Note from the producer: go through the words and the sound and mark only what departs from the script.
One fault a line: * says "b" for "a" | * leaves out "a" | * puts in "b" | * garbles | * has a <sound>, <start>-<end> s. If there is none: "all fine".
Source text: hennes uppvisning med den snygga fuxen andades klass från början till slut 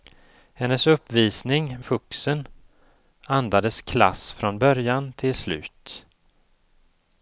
* leaves out "med den snygga"